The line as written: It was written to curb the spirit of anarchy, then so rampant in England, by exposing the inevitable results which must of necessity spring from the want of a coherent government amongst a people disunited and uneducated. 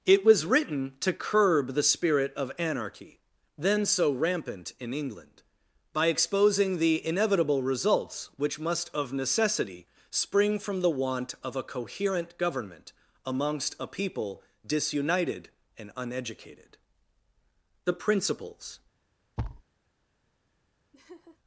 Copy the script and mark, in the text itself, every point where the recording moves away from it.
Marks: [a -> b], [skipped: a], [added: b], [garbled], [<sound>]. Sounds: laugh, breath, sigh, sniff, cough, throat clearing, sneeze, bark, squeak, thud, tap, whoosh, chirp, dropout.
It was written to curb the spirit of anarchy, then so rampant in England, by exposing the inevitable results which must of necessity spring from the want of a coherent government amongst a people disunited and uneducated. [added: The principles] [thud] [laugh]